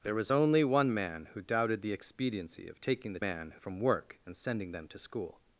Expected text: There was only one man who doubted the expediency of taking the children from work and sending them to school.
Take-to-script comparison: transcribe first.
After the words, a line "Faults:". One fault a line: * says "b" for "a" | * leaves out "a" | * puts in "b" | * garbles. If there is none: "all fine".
There was only one man who doubted the expediency of taking the man from work and sending them to school.
Faults:
* says "man" for "children"